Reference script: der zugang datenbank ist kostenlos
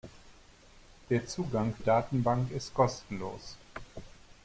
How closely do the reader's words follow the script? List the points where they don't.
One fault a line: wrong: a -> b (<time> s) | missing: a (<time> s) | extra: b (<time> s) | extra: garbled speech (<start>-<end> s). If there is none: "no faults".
no faults